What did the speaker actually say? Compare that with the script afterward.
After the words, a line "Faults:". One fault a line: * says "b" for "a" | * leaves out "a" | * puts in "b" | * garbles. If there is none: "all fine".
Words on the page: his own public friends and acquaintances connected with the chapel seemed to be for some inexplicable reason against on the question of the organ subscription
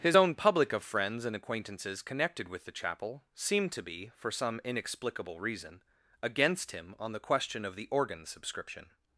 his own public of friends and acquaintances connected with the chapel seemed to be for some inexplicable reason against him on the question of the organ subscription
Faults:
* puts in "of"
* puts in "him"